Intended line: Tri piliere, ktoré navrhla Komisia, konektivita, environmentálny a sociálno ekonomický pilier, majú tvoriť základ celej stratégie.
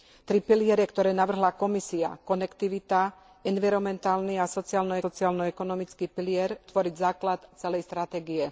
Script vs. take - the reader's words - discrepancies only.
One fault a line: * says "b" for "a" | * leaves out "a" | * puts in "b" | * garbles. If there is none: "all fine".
* puts in "sociálno"
* leaves out "majú"